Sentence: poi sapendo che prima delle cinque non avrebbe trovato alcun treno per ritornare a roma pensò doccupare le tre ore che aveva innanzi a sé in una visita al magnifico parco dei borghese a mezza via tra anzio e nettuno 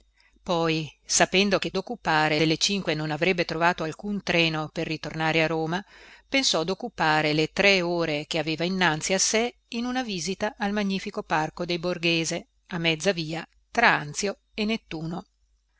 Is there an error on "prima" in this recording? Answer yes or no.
yes